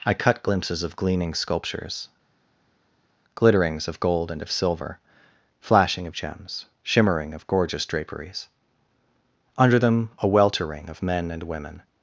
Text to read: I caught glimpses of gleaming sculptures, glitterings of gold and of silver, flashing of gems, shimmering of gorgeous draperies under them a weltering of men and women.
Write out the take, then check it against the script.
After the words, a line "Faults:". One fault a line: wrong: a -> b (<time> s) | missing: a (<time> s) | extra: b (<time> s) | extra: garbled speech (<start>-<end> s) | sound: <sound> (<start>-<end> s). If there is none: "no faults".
I cut glimpses of gleaming sculptures, glitterings of gold and of silver, flashing of gems, shimmering of gorgeous draperies under them a weltering of men and women.
Faults:
wrong: caught -> cut (0.1 s)